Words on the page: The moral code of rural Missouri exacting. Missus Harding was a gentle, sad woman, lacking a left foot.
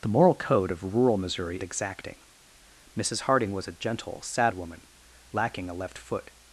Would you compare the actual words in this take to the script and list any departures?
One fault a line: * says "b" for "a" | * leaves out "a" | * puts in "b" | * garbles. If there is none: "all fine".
all fine